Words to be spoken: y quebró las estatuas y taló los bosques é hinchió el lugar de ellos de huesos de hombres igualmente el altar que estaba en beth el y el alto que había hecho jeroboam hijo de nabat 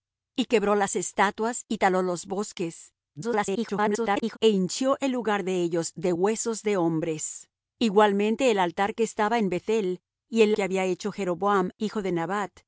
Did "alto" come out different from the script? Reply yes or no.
yes